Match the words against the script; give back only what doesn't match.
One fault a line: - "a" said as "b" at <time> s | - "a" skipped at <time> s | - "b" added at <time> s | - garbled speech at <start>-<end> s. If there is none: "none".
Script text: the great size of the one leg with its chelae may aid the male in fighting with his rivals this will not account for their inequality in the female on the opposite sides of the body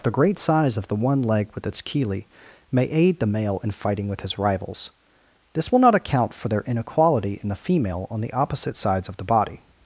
none